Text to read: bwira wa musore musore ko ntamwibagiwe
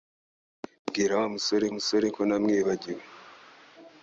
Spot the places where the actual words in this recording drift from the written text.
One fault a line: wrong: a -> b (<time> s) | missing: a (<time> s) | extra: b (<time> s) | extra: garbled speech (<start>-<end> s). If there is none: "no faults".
no faults